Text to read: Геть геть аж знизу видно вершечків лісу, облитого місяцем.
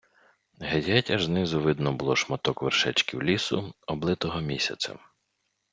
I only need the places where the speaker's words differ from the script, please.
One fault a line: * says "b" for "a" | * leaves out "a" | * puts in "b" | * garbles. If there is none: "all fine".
* puts in "було шматок"